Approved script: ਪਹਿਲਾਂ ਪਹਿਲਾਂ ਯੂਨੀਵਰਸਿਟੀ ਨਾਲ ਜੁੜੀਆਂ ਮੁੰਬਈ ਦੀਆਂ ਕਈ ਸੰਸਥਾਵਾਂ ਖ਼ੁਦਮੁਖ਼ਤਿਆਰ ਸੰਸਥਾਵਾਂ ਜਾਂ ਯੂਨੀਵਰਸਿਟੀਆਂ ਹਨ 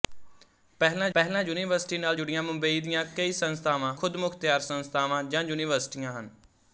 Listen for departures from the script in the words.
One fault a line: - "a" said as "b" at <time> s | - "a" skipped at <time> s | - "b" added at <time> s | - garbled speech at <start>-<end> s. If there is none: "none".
none